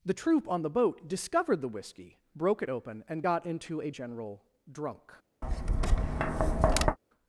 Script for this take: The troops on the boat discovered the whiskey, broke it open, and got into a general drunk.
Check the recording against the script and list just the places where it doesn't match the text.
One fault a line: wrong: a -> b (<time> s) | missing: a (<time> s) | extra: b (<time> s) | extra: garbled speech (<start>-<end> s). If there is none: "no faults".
wrong: troops -> troop (0.1 s)